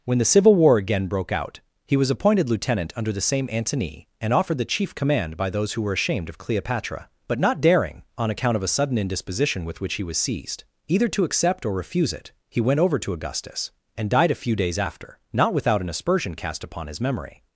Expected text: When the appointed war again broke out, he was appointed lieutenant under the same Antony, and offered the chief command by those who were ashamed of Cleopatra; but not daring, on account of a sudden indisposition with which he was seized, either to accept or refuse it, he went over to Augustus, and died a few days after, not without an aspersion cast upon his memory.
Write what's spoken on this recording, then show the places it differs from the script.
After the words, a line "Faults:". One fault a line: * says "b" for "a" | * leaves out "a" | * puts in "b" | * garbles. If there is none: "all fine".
When the civil war again broke out, he was appointed lieutenant under the same Antony, and offered the chief command by those who were ashamed of Cleopatra; but not daring, on account of a sudden indisposition with which he was seized, either to accept or refuse it, he went over to Augustus, and died a few days after, not without an aspersion cast upon his memory.
Faults:
* says "civil" for "appointed"